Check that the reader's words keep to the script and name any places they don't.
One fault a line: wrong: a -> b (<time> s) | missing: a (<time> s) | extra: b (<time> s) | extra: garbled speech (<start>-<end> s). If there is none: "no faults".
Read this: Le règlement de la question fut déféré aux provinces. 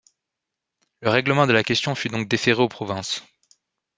extra: donc (2.1 s)